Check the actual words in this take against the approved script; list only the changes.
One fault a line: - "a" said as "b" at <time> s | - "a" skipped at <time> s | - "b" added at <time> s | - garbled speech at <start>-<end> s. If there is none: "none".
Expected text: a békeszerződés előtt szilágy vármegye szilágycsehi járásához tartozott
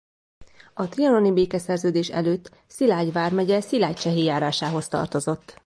- "trianoni" added at 0.9 s